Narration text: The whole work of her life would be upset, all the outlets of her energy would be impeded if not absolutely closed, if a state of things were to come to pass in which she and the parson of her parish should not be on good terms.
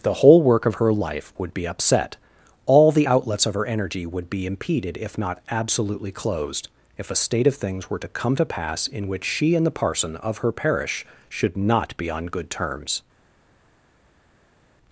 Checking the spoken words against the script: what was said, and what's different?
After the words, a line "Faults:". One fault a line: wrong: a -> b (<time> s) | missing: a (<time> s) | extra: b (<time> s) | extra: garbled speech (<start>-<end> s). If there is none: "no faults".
The whole work of her life would be upset, all the outlets of her energy would be impeded if not absolutely closed, if a state of things were to come to pass in which she and the parson of her parish should not be on good terms.
Faults:
no faults